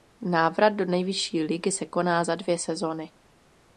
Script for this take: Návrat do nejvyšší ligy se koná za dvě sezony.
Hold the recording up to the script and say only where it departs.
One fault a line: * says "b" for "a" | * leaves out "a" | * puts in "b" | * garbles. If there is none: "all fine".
all fine